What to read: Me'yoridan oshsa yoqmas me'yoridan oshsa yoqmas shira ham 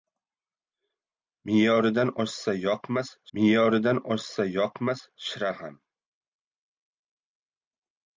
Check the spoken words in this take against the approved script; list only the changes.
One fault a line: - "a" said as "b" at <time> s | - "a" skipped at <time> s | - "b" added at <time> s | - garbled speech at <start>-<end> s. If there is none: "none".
none